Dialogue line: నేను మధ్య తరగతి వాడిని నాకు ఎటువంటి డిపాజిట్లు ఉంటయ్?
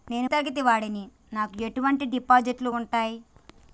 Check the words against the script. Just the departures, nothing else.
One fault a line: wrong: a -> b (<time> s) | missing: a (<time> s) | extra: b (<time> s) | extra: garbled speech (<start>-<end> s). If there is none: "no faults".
missing: మధ్య (0.3 s)